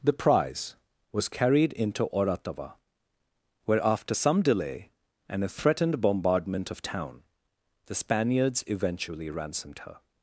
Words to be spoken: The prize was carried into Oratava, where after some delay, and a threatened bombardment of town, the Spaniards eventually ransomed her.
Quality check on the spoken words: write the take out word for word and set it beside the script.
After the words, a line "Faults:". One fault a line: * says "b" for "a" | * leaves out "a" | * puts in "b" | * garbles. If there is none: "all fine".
The prize was carried into Oratava, where after some delay, and a threatened bombardment of town, the Spaniards eventually ransomed her.
Faults:
all fine